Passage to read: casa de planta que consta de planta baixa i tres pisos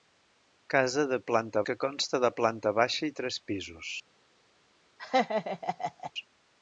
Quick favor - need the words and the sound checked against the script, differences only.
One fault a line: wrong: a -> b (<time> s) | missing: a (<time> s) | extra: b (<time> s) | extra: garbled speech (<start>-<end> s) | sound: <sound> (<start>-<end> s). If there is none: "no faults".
sound: laugh (5.0-6.1 s)